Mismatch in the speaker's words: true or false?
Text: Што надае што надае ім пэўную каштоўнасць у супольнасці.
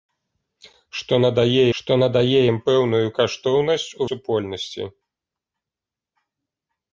false